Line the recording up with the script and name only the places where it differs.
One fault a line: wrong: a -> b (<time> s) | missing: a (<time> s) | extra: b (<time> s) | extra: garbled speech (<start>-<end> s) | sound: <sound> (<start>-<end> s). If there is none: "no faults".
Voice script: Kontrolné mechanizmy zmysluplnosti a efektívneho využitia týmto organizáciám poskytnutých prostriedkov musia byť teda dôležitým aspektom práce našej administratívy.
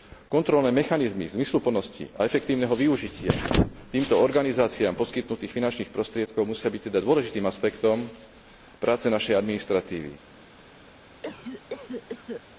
extra: finančných (5.5 s)
sound: cough (11.2-12.4 s)